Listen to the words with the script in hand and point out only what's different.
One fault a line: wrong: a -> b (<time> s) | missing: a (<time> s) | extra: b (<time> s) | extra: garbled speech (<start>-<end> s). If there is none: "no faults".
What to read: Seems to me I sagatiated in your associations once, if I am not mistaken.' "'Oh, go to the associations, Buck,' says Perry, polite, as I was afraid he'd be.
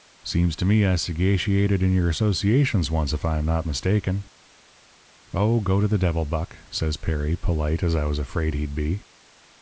wrong: associations -> devil (6.0 s)